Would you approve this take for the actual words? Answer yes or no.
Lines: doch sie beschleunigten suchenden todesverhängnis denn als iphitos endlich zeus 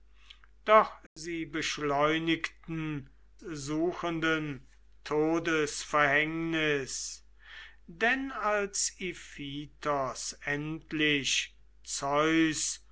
yes